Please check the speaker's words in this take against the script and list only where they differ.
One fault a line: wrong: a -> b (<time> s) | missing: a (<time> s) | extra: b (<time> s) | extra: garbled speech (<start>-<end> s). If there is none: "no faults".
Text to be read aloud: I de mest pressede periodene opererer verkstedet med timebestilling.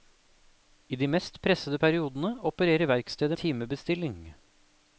missing: med (3.4 s)